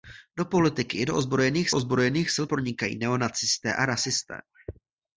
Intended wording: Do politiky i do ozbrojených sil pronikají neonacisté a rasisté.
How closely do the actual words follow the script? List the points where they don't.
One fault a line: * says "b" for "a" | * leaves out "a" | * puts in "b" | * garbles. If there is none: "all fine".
* puts in "ozbrojených"